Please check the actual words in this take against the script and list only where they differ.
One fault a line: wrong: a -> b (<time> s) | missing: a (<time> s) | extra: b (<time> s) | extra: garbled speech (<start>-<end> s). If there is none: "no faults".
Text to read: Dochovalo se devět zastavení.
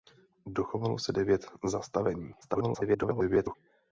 extra: garbled speech (2.4-3.6 s)